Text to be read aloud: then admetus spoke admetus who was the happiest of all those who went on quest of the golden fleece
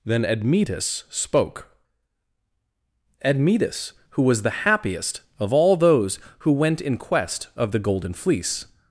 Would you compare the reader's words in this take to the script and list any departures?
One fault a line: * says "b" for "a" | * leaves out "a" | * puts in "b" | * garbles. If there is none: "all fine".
* says "in" for "on"